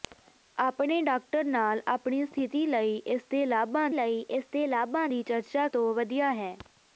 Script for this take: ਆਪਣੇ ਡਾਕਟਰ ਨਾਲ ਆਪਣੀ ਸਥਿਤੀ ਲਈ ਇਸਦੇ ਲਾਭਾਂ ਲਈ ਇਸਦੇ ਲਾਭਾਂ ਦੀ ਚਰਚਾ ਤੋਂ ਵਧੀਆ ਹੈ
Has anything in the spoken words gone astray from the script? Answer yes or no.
no